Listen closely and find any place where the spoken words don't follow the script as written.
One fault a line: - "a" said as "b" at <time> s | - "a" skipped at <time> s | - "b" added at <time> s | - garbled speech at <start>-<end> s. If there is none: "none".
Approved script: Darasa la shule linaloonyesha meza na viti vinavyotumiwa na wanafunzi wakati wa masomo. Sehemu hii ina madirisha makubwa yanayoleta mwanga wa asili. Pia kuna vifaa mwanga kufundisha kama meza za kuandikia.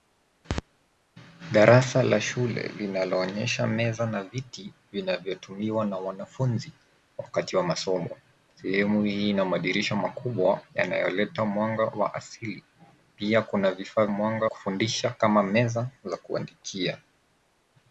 none